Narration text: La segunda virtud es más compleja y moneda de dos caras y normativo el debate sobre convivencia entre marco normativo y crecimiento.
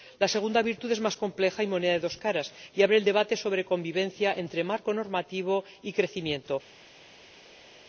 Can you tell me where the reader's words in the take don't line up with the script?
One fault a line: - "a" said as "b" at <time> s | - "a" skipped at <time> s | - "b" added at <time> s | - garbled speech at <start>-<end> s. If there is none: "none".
- "normativo" said as "abre" at 2.8 s